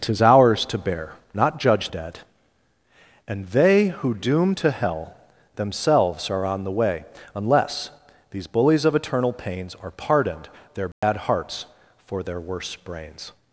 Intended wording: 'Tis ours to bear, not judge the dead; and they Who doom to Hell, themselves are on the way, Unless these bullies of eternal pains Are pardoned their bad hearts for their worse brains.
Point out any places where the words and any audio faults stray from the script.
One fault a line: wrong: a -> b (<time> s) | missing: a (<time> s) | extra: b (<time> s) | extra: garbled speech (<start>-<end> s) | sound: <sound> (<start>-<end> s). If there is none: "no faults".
missing: the (1.9 s)
sound: dropout (10.9-11.0 s)